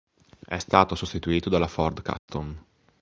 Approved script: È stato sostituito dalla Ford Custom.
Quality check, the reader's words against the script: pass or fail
pass